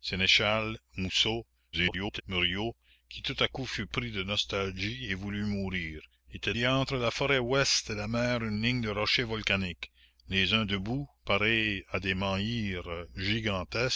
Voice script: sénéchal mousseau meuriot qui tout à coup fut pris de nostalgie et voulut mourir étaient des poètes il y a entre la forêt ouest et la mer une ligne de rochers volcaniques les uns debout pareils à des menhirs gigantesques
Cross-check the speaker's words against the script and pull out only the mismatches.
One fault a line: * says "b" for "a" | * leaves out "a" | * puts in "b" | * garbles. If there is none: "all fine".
* garbles
* leaves out "des poètes il"